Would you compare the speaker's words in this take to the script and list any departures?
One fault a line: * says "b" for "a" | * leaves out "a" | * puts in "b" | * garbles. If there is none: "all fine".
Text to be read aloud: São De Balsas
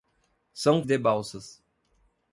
all fine